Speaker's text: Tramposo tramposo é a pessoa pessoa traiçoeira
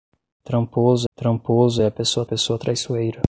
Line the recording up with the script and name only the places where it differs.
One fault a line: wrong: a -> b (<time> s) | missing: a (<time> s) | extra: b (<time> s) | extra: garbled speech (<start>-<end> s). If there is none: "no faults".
no faults